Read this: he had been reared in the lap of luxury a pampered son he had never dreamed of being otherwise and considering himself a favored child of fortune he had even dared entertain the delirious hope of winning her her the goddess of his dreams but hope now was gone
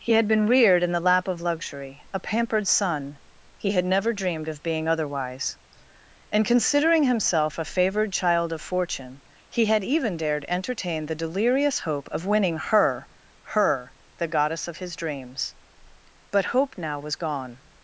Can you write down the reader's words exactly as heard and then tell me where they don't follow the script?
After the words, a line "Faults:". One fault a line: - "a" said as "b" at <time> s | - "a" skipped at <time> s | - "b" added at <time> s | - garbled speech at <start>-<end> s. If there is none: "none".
he had been reared in the lap of luxury a pampered son he had never dreamed of being otherwise and considering himself a favored child of fortune he had even dared entertain the delirious hope of winning her her the goddess of his dreams but hope now was gone
Faults:
none